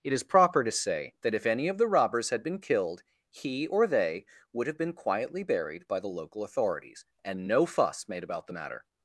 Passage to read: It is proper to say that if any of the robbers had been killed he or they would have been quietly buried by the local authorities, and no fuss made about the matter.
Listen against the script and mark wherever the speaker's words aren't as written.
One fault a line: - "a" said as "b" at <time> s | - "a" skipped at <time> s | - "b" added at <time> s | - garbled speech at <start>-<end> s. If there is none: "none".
none